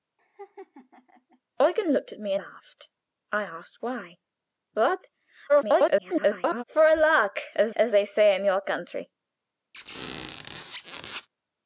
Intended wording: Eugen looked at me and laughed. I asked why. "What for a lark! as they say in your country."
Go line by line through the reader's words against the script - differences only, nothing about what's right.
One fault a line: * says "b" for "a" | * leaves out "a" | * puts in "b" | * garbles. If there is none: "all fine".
* leaves out "and"
* garbles
* puts in "as"